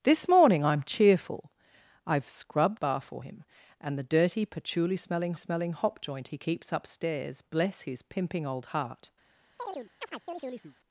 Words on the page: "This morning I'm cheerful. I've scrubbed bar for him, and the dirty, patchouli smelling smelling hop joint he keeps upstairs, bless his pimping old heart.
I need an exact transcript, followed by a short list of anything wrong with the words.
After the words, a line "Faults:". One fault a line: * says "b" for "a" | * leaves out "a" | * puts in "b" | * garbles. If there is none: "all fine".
"This morning I'm cheerful. I've scrubbed bar for him, and the dirty, patchouli smelling smelling hop joint he keeps upstairs, bless his pimping old heart.
Faults:
all fine